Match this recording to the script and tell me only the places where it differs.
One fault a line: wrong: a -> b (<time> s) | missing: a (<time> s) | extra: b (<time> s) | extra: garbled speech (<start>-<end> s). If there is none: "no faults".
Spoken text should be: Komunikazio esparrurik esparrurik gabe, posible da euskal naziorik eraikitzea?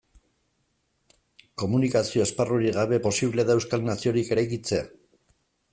missing: esparrurik (2.8 s)